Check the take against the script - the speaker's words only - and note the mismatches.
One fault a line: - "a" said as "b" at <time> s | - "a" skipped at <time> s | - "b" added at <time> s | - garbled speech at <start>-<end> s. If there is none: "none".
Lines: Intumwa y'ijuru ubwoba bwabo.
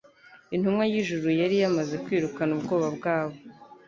- "yari yamaze kwirukana" added at 1.4 s